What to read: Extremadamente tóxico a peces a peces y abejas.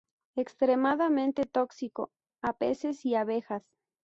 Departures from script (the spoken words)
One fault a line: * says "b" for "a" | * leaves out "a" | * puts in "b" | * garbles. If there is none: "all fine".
* leaves out "a peces"